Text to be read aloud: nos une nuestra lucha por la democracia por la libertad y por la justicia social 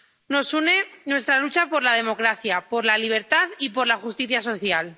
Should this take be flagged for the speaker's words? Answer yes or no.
no